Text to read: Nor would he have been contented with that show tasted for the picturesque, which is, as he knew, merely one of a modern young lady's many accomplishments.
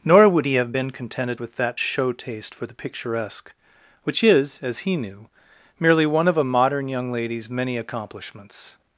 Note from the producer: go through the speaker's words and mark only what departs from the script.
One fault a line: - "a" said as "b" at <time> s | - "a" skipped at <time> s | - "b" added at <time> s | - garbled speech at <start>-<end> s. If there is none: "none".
- "tasted" said as "taste" at 2.1 s